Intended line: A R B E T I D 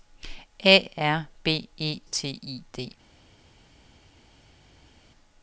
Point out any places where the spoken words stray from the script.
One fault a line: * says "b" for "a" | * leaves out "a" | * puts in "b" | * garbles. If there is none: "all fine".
all fine